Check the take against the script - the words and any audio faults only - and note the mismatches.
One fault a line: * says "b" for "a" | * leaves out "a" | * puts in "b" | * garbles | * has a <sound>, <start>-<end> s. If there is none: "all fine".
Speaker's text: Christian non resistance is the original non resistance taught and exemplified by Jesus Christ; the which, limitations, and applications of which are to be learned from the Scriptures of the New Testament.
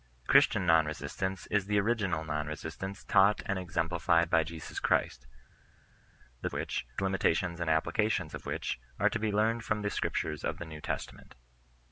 all fine